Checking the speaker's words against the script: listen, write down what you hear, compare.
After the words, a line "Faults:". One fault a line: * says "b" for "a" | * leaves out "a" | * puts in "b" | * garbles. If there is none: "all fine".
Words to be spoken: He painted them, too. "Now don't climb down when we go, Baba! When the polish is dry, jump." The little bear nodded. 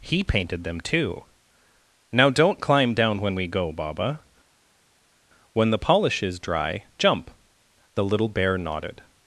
He painted them, too. "Now don't climb down when we go, Baba! When the polish is dry, jump." The little bear nodded.
Faults:
all fine